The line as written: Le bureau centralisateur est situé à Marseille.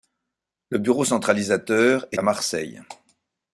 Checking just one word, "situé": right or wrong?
wrong